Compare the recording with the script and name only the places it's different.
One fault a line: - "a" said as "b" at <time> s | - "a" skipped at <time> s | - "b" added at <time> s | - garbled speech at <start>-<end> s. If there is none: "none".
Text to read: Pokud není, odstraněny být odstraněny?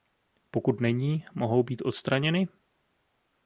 - "odstraněny" said as "mohou" at 1.4 s